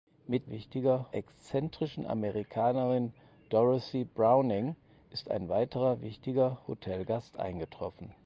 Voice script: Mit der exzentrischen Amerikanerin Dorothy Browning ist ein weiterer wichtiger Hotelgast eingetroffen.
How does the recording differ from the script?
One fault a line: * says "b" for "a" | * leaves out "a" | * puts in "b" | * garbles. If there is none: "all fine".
* says "wichtiger" for "der"